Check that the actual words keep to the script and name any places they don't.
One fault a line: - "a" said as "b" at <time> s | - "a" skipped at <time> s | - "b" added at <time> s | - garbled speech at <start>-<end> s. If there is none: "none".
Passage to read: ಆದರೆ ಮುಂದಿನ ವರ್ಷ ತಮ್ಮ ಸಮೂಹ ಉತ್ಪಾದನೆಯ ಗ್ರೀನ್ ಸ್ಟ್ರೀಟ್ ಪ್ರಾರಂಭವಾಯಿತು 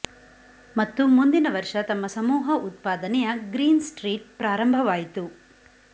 - "ಆದರೆ" said as "ಮತ್ತು" at 0.8 s